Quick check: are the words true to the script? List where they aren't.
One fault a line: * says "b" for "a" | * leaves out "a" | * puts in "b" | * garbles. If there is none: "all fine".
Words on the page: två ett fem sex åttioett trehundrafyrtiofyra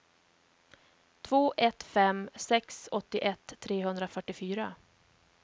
all fine